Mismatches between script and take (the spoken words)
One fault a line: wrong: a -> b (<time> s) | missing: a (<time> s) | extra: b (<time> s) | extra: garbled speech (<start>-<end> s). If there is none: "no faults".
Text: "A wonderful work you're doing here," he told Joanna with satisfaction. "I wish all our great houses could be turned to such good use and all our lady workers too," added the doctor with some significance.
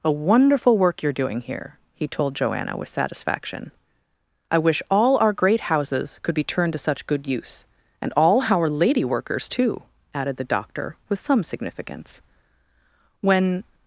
extra: When (13.2 s)